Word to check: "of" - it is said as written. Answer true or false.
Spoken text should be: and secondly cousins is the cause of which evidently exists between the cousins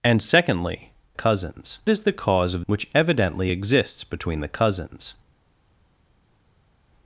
true